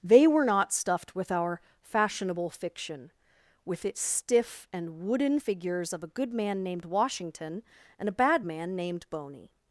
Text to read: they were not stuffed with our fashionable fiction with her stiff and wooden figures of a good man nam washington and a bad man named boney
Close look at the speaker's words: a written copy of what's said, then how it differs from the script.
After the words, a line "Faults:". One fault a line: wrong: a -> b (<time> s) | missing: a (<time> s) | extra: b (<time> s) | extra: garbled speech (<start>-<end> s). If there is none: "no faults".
they were not stuffed with our fashionable fiction with its stiff and wooden figures of a good man named washington and a bad man named boney
Faults:
wrong: her -> its (3.9 s)
wrong: nam -> named (6.6 s)